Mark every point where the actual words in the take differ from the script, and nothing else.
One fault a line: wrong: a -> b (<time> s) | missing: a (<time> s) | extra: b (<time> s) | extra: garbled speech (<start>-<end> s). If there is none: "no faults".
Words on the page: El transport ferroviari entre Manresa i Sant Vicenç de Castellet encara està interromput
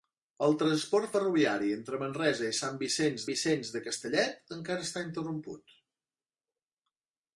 extra: Vicenç (3.3 s)